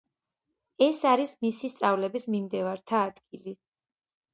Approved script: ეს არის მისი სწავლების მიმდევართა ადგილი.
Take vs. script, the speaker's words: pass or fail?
pass